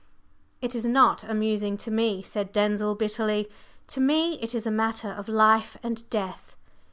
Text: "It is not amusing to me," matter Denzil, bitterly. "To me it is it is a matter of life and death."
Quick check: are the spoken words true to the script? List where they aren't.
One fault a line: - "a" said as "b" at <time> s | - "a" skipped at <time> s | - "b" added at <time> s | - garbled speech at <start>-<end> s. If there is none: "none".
- "matter" said as "said" at 2.2 s
- "it is" skipped at 4.7 s